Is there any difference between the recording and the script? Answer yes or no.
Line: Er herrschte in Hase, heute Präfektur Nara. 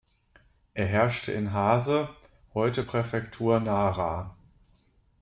no